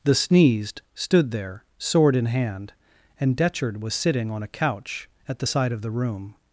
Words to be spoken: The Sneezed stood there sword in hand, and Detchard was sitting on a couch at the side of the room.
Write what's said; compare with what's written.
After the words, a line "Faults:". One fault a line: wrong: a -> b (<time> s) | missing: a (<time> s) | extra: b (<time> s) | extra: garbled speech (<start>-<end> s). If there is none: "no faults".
The Sneezed stood there sword in hand, and Detchard was sitting on a couch at the side of the room.
Faults:
no faults